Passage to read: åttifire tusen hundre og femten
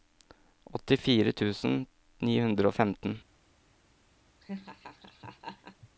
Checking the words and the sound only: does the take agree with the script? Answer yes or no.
no